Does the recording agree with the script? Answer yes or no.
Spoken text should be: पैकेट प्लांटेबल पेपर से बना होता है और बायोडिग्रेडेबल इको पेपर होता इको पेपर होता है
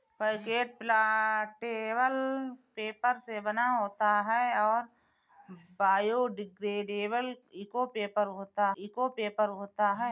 yes